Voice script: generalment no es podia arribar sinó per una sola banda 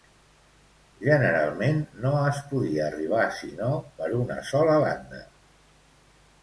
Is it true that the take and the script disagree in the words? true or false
false